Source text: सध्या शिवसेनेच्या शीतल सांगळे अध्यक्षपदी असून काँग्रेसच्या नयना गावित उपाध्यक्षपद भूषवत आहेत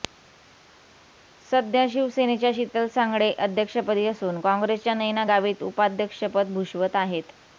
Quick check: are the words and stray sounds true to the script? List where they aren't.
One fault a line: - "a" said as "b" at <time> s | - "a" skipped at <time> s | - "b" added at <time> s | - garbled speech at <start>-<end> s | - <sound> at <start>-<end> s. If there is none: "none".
none